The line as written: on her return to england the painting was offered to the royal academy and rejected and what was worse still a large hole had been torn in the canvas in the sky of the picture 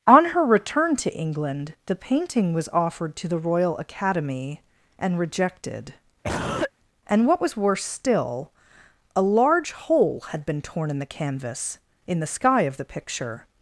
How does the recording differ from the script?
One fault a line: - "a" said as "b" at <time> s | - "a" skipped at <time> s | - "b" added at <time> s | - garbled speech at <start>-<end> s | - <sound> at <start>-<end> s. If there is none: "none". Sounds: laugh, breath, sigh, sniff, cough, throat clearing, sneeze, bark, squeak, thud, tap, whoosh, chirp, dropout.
- cough at 6.2-6.7 s